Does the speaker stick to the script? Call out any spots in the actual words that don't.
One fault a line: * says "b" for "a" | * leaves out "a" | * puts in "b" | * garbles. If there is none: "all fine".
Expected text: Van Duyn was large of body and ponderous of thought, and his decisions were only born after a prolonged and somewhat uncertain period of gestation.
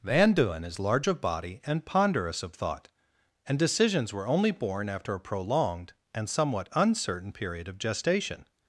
* says "is" for "was"
* leaves out "his"